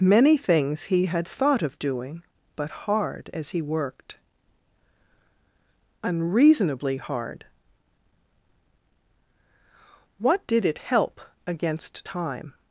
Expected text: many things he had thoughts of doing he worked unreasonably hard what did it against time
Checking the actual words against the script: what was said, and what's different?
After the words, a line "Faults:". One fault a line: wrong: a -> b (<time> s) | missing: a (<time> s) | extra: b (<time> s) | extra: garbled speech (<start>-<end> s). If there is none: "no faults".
many things he had thought of doing but hard as he worked unreasonably hard what did it help against time
Faults:
wrong: thoughts -> thought (1.3 s)
extra: but hard as (2.5 s)
extra: help (10.8 s)